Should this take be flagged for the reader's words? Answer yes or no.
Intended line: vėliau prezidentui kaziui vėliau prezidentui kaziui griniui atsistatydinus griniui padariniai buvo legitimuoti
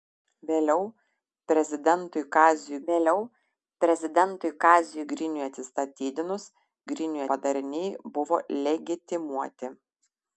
no